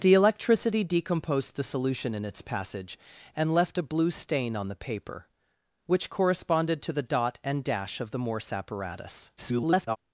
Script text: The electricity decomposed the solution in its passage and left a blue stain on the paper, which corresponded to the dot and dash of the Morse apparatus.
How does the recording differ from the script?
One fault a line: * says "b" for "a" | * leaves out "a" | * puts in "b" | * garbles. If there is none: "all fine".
* garbles